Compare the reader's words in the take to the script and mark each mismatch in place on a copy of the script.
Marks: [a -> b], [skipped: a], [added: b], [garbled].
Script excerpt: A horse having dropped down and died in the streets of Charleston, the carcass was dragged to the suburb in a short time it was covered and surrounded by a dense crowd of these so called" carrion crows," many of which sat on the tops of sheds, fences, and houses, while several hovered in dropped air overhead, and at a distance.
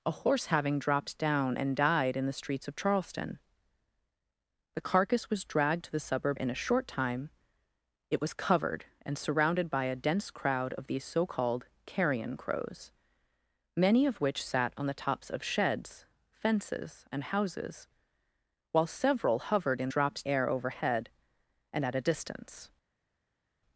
A horse having dropped down and died in the streets of Charleston, the carcass was dragged to the suburb in a short time it was covered and surrounded by a dense crowd of these so called" carrion crows," many of which sat on the tops of sheds, fences, and houses, while several hovered in dropped air overhead, and at a distance.